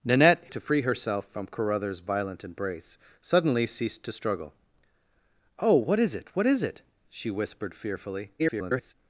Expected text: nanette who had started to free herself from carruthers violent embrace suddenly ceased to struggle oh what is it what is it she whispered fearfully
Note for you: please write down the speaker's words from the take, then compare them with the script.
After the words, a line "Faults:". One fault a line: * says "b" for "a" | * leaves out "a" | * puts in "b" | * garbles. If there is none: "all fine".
nanette to free herself from carruthers violent embrace suddenly ceased to struggle oh what is it what is it she whispered fearfully [garbled]
Faults:
* leaves out "who had started"
* garbles